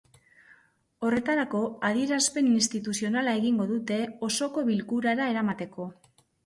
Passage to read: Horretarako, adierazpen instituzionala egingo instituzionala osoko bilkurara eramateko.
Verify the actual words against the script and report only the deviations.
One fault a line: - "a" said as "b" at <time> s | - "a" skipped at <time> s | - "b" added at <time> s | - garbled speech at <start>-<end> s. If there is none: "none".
- "instituzionala" said as "dute" at 3.8 s